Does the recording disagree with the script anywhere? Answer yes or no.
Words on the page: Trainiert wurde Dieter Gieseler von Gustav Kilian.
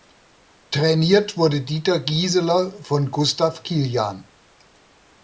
no